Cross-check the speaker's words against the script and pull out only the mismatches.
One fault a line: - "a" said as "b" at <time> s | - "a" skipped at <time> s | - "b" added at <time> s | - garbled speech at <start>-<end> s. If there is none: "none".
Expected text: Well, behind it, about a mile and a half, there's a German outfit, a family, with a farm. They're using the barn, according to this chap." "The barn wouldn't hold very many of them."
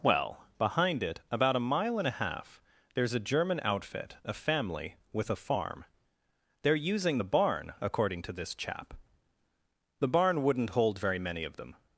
none